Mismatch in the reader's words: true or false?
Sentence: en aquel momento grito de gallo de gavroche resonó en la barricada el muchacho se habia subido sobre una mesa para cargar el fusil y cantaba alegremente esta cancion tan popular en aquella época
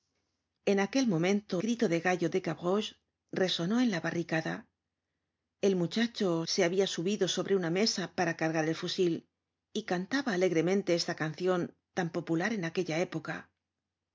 false